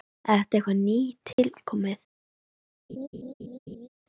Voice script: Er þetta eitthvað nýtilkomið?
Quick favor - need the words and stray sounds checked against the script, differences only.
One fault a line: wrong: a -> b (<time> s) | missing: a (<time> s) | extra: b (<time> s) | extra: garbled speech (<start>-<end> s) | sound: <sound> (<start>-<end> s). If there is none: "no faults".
sound: dropout (1.3-1.4 s)
sound: laugh (2.9-3.9 s)